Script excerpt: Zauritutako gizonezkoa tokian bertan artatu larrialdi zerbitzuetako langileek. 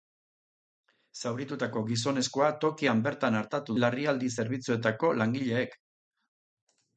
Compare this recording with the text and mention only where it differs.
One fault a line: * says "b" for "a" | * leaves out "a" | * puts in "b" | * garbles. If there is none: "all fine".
all fine